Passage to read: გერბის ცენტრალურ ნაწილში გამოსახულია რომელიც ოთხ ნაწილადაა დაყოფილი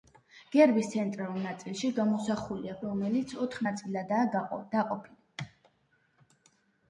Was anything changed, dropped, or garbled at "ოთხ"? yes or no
no